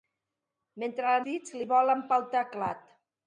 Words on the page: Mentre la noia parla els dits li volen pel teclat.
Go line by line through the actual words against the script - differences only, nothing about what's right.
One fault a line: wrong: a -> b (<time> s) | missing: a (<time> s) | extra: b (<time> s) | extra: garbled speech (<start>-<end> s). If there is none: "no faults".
missing: noia parla els (1.2 s)